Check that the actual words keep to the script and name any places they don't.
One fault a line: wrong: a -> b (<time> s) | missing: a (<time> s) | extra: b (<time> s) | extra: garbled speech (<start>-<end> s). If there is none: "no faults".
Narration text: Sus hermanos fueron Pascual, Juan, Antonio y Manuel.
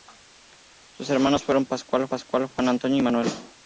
extra: Pascual (2.1 s)